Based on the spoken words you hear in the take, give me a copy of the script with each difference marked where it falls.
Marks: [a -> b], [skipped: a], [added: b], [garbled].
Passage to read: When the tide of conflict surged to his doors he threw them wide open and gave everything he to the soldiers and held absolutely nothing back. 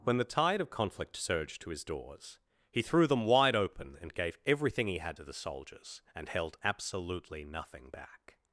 When the tide of conflict surged to his doors he threw them wide open and gave everything he [added: had] to the soldiers and held absolutely nothing back.